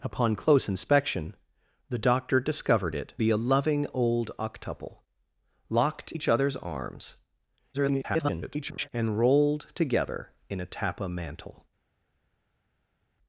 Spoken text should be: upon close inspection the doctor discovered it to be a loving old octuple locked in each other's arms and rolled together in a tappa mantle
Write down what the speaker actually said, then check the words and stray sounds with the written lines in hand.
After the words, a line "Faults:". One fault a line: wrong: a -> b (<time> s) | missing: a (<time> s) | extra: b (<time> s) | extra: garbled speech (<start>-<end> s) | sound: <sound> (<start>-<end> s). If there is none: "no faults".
upon close inspection the doctor discovered it be a loving old octuple locked each other's arms [garbled] and rolled together in a tappa mantle
Faults:
missing: to (3.1 s)
missing: in (6.1 s)
extra: garbled speech (7.7-8.9 s)